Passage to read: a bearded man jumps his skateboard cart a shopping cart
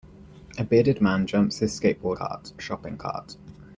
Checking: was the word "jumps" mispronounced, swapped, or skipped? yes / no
no